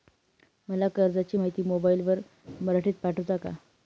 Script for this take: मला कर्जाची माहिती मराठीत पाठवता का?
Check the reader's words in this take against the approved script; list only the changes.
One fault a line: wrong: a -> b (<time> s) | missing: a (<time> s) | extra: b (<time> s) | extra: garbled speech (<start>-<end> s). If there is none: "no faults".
extra: मोबाईलवर (1.6 s)